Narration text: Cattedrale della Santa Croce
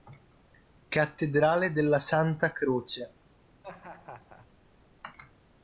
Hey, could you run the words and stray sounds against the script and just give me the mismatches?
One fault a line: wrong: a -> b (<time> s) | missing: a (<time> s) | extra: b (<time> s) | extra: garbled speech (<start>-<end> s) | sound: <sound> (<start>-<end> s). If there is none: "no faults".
sound: laugh (3.6-4.5 s)